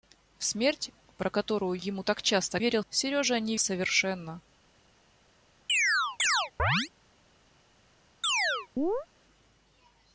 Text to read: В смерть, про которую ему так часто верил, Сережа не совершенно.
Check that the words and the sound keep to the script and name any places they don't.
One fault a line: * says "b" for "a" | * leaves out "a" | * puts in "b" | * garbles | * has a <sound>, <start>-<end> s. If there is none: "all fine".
* has a chirp, 5.7-6.9 s
* has a chirp, 8.2-9.1 s